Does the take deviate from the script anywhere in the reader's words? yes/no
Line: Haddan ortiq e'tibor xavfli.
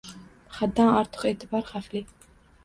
no